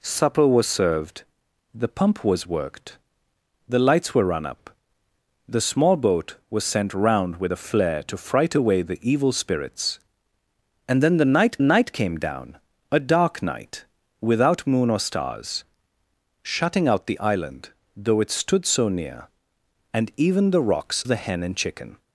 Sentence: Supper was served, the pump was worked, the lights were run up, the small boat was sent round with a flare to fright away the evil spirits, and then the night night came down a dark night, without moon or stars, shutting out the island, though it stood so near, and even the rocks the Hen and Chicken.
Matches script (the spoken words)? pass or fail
pass